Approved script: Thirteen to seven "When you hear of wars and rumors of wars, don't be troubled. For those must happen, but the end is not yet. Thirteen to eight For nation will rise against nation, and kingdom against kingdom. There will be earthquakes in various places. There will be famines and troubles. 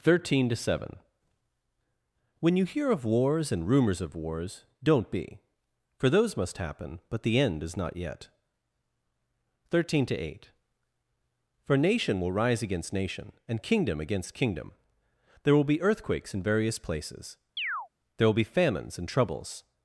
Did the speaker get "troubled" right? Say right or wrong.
wrong